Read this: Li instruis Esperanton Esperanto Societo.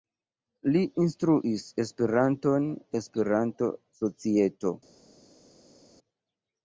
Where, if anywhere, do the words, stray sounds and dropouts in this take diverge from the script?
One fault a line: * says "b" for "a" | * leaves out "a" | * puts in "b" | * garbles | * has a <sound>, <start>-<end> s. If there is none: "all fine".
all fine